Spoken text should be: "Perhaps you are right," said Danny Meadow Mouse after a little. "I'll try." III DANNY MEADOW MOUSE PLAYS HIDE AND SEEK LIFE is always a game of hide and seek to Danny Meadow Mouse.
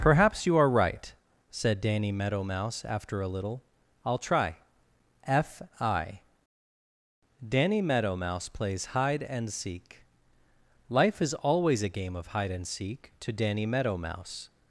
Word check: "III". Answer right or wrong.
wrong